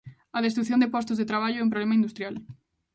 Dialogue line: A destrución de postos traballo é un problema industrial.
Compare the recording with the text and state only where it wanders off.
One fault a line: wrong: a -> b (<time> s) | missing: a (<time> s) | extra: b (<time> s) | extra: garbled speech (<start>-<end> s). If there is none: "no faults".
extra: de (1.2 s)